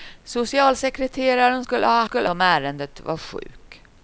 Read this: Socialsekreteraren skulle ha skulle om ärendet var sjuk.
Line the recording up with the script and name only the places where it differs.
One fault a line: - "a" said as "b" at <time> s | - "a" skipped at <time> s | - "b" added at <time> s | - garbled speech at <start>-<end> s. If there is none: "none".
none